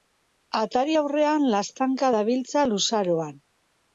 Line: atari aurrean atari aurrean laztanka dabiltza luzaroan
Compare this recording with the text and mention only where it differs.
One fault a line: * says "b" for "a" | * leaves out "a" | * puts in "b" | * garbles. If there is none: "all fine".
* leaves out "atari aurrean"